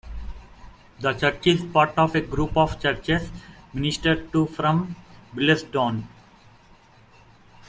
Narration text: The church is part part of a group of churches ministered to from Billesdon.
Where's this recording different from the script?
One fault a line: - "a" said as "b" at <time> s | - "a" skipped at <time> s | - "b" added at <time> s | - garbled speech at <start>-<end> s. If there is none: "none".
- "part" skipped at 1.9 s